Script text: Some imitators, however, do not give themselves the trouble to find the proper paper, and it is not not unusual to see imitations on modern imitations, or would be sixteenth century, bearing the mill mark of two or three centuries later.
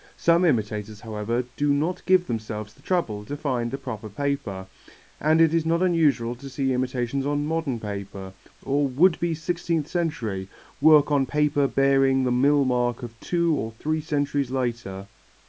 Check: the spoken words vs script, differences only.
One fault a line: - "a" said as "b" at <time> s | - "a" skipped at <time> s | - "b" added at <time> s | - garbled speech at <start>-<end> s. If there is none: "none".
- "not" skipped at 5.8 s
- "imitations" said as "paper" at 7.8 s
- "work on paper" added at 10.8 s